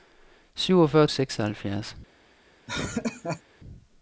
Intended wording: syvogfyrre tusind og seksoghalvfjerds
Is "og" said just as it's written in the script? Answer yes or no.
no